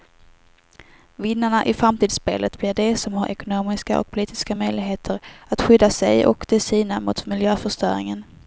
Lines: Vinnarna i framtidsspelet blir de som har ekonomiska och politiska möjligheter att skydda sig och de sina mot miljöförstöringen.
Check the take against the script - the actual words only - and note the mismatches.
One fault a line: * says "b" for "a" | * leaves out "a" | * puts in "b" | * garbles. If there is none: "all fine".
all fine